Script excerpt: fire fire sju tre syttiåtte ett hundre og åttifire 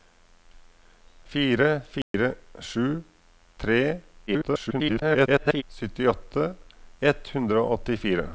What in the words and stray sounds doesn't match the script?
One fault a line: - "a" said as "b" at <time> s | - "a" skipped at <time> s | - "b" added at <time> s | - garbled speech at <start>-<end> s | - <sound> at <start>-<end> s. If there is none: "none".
- dropout at 2.0-2.1 s
- garbled speech at 4.3-5.6 s